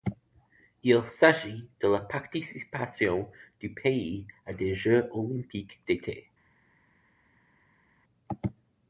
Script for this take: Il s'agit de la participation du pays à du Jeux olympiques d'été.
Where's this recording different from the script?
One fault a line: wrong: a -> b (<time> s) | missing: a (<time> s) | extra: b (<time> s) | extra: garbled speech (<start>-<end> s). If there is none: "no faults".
wrong: du -> des (4.5 s)